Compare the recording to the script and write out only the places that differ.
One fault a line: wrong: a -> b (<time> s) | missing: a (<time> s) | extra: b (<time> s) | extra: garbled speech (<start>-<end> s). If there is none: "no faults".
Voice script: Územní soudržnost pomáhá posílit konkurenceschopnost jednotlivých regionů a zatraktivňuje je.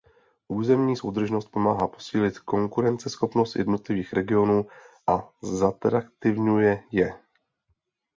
no faults